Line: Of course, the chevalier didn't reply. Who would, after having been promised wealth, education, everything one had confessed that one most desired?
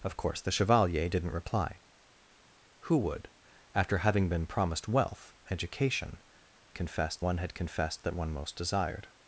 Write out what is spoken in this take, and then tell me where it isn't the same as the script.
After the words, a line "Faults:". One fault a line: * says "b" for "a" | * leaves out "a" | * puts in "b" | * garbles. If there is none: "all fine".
Of course, the chevalier didn't reply. Who would, after having been promised wealth, education, confessed one had confessed that one most desired?
Faults:
* says "confessed" for "everything"